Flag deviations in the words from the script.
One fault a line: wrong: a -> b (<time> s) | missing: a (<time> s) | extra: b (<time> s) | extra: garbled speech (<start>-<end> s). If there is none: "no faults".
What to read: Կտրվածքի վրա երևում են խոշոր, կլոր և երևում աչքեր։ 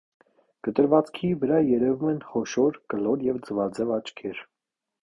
wrong: երևում -> ձվաձև (3.5 s)